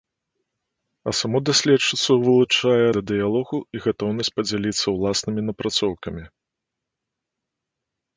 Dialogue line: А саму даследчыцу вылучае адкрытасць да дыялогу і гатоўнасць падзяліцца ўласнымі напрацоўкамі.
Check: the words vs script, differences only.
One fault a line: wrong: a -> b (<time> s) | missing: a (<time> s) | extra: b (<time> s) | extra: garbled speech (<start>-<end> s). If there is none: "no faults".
missing: адкрытасць (2.8 s)